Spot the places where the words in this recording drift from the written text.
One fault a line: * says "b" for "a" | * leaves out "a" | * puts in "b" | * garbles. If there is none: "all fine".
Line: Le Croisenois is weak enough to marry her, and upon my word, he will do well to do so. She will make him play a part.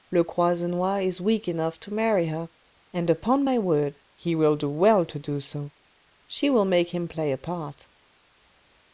all fine